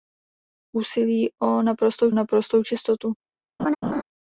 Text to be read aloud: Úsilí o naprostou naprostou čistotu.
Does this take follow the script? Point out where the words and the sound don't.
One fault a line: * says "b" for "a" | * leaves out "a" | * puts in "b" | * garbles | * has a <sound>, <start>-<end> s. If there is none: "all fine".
* has a laugh, 3.6-4.0 s